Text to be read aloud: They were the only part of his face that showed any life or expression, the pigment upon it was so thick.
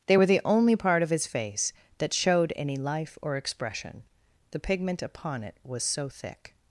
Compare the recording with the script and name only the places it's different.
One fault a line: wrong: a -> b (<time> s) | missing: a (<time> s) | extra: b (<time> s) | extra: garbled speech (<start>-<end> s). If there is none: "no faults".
no faults